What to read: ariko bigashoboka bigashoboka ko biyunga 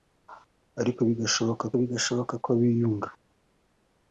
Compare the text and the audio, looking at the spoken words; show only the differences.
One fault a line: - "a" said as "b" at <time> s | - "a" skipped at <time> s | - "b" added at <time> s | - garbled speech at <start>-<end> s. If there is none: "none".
none